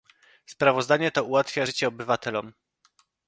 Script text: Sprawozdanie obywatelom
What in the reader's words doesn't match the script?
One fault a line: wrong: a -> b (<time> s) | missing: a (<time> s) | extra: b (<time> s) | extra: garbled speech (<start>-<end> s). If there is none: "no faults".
extra: to ułatwia życie (1.1 s)